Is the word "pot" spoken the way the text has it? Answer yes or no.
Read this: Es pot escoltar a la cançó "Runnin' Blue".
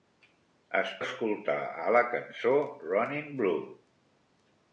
no